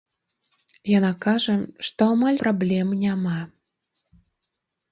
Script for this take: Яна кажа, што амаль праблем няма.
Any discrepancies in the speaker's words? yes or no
no